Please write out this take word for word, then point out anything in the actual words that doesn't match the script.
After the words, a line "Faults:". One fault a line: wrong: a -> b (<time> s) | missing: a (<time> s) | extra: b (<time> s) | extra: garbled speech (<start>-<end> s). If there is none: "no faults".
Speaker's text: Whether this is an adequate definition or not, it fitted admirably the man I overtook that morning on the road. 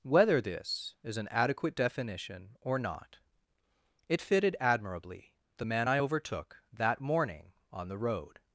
Whether this is an adequate definition or not, it fitted admirably the man I overtook that morning on the road.
Faults:
no faults